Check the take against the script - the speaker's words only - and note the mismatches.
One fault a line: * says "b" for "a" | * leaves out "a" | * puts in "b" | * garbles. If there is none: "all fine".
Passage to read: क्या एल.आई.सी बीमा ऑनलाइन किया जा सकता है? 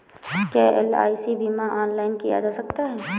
all fine